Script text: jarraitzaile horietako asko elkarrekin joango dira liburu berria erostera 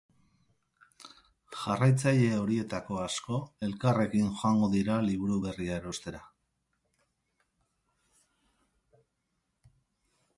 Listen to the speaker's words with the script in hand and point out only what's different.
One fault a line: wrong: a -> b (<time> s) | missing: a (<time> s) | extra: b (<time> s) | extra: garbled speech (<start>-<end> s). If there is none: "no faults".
no faults